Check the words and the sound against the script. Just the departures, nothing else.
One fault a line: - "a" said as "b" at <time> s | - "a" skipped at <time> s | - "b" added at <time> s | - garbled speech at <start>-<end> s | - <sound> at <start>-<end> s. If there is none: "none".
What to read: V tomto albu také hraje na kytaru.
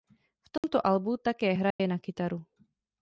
- dropout at 0.6-0.6 s
- dropout at 1.7-1.8 s